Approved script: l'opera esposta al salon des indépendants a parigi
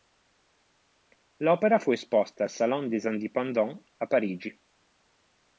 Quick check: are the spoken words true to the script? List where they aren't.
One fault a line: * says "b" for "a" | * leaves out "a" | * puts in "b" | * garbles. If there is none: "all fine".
* puts in "fu"